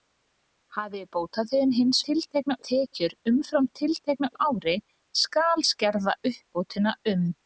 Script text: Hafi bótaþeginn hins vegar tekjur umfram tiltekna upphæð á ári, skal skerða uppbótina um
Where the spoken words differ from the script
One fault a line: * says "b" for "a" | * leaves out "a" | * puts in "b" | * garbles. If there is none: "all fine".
* says "tiltekna" for "vegar"
* leaves out "upphæð"